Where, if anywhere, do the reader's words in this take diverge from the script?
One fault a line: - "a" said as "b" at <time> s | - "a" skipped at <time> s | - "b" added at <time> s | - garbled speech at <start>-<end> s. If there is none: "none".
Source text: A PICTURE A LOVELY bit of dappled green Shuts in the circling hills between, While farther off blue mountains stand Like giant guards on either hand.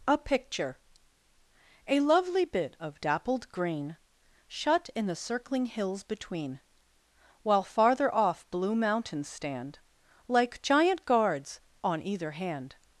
- "Shuts" said as "Shut" at 4.5 s